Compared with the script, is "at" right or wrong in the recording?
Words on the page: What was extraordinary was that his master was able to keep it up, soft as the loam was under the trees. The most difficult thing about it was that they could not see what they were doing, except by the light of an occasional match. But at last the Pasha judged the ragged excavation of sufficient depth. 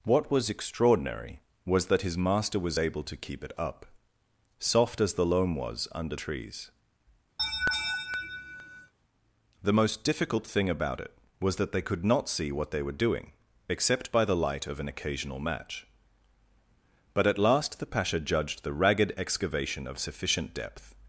right